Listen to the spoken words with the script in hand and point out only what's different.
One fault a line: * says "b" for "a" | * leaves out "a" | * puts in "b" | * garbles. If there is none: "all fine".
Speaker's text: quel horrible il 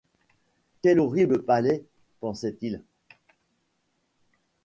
* puts in "palais pensait"